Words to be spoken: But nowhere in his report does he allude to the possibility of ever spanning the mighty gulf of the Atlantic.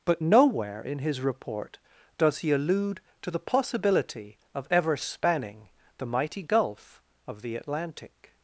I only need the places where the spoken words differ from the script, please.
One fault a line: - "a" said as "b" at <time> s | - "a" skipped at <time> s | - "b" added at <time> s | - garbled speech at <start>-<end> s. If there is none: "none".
none